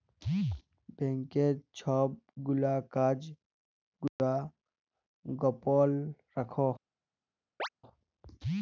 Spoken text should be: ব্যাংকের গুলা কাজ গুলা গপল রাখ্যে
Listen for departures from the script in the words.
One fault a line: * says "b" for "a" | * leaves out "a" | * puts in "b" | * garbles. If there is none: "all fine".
* puts in "ছব"